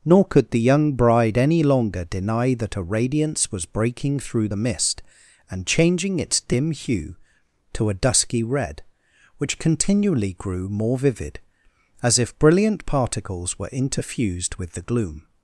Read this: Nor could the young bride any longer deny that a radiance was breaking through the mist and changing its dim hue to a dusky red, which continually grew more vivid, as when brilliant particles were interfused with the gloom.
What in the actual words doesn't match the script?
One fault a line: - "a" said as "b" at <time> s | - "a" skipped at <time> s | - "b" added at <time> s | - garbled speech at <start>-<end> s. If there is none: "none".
- "when" said as "if" at 12.2 s